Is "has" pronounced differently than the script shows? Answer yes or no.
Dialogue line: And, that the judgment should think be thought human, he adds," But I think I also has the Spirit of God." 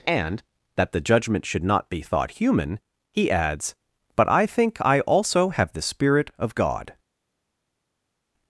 yes